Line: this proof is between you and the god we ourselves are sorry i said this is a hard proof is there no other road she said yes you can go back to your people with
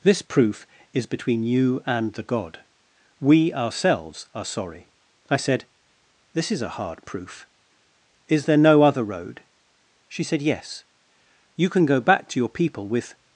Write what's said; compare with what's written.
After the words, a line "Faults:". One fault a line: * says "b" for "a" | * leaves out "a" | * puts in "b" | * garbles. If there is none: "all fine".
this proof is between you and the god we ourselves are sorry i said this is a hard proof is there no other road she said yes you can go back to your people with
Faults:
all fine